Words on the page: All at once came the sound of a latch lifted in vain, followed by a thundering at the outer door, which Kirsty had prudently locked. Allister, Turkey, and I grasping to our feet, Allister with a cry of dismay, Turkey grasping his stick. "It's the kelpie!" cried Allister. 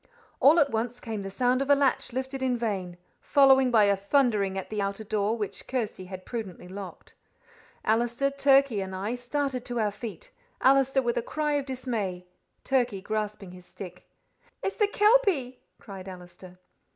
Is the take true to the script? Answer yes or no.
no